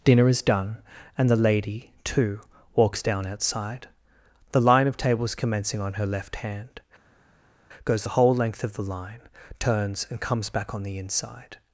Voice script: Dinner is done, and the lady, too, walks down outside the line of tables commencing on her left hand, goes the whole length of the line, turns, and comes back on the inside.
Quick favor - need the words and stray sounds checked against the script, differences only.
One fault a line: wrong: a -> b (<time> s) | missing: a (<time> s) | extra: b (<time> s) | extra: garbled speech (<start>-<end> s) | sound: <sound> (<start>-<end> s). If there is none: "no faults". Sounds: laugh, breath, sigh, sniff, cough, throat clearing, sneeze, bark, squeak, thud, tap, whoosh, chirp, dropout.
no faults